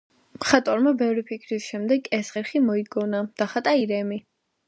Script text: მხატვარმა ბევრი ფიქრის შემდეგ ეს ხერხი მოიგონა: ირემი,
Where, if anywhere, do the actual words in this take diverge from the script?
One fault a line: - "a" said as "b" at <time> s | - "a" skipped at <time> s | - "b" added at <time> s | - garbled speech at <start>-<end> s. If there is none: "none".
- "დახატა" added at 3.4 s